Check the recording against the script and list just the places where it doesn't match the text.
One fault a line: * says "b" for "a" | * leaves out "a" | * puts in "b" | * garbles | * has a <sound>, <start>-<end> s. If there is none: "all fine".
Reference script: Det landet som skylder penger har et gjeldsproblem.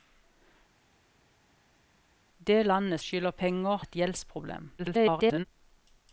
* leaves out "som"
* leaves out "har"
* garbles